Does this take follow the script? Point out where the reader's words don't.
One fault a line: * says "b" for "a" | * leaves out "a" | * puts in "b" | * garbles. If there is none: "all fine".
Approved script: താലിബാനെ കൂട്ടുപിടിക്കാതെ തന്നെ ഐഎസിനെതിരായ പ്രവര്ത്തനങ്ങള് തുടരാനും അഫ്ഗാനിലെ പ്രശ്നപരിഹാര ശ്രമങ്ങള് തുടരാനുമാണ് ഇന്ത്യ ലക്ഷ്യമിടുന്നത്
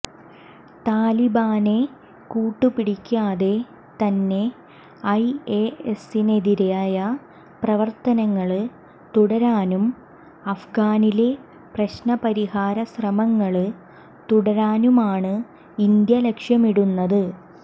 all fine